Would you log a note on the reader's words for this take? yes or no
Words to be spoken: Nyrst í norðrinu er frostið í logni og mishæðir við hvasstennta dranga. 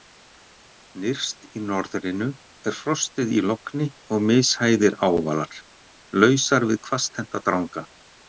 yes